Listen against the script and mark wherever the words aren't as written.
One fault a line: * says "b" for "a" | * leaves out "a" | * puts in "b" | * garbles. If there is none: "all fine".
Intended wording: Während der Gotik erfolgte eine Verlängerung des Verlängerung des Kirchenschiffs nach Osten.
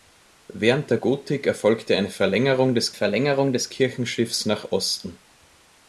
all fine